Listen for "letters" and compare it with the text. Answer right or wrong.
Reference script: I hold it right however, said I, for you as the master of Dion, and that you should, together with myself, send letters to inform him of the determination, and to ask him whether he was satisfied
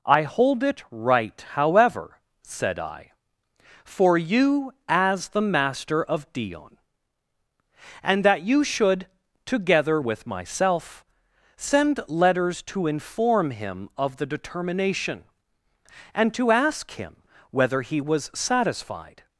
right